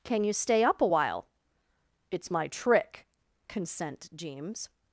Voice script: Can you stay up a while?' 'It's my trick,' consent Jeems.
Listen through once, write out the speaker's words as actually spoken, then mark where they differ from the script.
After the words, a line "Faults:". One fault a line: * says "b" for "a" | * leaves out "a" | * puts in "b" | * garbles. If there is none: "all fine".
Can you stay up a while?' 'It's my trick,' consent Jeems.
Faults:
all fine